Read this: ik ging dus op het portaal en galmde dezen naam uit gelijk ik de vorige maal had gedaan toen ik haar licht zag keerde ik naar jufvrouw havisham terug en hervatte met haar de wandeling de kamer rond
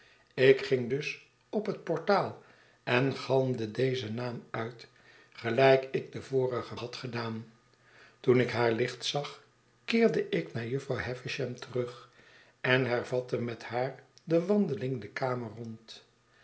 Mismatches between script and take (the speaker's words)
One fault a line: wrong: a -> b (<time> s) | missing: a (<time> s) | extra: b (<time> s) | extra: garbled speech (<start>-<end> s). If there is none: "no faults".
missing: maal (6.8 s)